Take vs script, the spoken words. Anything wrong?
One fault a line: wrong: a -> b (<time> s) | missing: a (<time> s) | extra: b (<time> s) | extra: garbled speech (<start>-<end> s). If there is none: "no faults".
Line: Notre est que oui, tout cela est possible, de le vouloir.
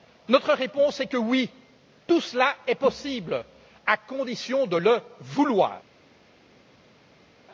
extra: réponse (0.5 s)
extra: à condition (3.9 s)